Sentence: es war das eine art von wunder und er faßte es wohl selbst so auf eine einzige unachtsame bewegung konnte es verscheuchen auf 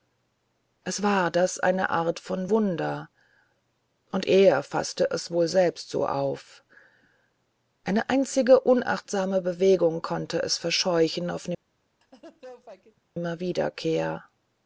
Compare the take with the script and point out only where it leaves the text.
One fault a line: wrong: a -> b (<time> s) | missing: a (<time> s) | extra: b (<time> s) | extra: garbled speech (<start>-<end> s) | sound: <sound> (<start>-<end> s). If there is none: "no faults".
sound: laugh (12.0-13.0 s)